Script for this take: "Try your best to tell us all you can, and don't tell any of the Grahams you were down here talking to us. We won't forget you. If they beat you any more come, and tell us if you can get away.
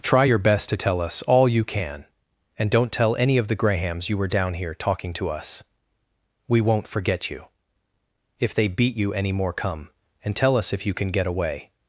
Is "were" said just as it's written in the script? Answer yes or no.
yes